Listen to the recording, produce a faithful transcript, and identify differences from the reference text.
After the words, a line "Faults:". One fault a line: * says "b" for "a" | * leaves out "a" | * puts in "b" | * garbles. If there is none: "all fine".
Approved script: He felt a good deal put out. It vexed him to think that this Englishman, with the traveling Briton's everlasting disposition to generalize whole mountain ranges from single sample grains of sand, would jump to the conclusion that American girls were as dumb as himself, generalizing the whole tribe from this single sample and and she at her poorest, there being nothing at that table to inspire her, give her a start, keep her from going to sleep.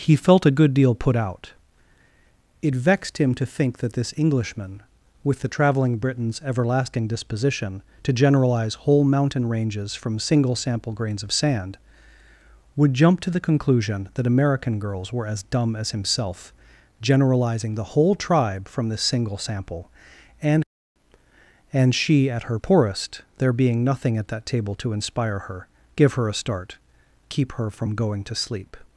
He felt a good deal put out. It vexed him to think that this Englishman, with the traveling Briton's everlasting disposition to generalize whole mountain ranges from single sample grains of sand, would jump to the conclusion that American girls were as dumb as himself, generalizing the whole tribe from this single sample and and she at her poorest, there being nothing at that table to inspire her, give her a start, keep her from going to sleep.
Faults:
all fine